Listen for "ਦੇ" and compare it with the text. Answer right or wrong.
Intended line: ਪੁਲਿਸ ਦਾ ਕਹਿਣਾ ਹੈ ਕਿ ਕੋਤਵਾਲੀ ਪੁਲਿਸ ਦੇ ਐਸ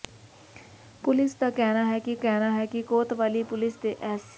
right